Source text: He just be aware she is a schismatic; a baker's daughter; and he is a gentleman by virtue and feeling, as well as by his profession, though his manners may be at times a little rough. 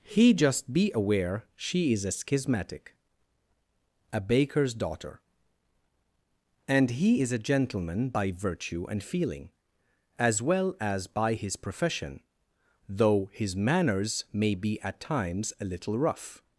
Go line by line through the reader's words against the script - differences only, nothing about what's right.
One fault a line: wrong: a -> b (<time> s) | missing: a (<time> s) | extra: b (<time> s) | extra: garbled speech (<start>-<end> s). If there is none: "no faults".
no faults